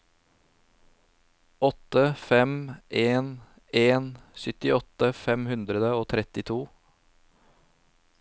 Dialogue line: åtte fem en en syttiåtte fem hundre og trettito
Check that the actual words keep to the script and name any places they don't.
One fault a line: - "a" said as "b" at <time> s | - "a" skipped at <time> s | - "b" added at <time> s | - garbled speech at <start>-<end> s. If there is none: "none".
none